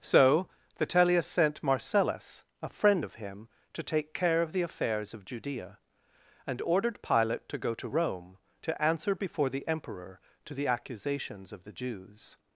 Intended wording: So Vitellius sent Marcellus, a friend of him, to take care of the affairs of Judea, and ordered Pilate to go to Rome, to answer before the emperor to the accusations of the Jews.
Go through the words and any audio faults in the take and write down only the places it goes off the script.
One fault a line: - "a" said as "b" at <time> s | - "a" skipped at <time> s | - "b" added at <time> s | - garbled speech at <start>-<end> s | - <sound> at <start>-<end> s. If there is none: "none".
none